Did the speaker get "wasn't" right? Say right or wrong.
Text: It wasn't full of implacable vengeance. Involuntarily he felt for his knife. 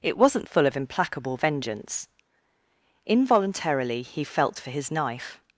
right